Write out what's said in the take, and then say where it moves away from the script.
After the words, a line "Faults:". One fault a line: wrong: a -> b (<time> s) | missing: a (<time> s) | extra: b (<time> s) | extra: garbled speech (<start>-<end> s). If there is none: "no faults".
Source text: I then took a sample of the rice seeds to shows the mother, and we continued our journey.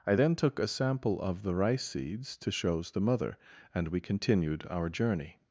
I then took a sample of the rice seeds to shows the mother, and we continued our journey.
Faults:
no faults